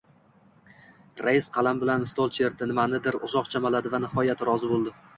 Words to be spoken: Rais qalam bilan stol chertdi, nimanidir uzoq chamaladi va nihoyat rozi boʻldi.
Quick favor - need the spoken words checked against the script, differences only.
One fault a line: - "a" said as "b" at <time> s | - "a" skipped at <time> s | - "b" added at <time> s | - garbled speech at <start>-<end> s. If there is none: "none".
none